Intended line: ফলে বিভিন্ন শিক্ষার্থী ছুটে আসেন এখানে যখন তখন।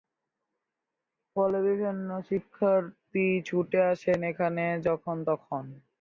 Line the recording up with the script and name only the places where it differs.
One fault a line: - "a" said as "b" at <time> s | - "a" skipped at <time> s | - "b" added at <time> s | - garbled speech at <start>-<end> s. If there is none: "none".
none